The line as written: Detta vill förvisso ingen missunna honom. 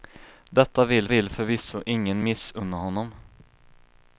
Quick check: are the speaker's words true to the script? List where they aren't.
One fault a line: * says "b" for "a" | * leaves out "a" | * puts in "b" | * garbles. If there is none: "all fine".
* puts in "vill"